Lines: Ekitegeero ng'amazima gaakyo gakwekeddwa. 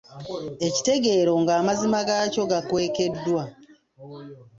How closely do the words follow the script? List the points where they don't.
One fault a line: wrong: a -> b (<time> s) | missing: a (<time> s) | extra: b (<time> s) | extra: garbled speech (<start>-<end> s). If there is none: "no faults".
no faults